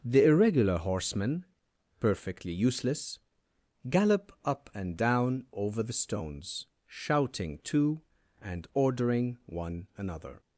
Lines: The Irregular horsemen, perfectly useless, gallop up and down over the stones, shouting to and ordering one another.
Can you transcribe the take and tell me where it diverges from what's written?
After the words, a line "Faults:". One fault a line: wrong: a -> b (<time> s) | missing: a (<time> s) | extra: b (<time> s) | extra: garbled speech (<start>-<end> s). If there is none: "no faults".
The Irregular horsemen, perfectly useless, gallop up and down over the stones, shouting to and ordering one another.
Faults:
no faults